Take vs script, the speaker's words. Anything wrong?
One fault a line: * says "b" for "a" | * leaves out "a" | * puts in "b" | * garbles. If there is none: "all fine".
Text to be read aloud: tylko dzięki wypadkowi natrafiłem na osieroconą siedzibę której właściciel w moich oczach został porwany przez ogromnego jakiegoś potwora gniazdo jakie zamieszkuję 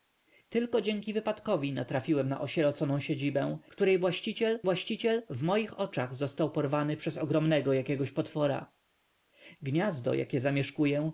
* puts in "właściciel"